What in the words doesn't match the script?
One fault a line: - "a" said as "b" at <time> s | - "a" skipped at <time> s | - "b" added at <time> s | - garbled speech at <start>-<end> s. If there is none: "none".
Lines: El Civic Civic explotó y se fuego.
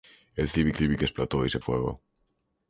none